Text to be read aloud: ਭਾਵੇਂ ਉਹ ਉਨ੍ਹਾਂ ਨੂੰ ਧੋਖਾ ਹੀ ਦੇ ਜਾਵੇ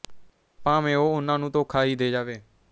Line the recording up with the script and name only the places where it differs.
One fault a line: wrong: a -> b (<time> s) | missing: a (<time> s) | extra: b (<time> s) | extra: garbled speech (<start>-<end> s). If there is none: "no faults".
no faults